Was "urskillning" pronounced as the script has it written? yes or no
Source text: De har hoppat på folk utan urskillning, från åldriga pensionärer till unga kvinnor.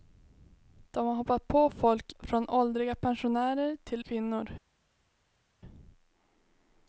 no